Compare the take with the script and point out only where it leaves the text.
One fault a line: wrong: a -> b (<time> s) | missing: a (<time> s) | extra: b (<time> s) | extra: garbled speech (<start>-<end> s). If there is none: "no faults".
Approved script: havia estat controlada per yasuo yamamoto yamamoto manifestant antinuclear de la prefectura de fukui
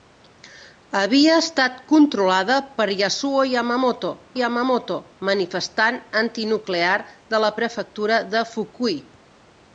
no faults